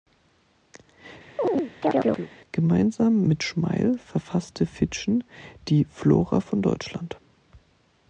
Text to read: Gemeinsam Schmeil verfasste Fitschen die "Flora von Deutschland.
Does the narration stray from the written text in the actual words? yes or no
yes